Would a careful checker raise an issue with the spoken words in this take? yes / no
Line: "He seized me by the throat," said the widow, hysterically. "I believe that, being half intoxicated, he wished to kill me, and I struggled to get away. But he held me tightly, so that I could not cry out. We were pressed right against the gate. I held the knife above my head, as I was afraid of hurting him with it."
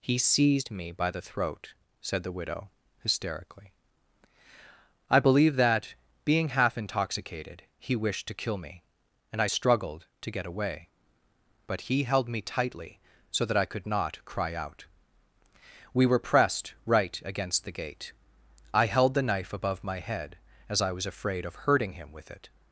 no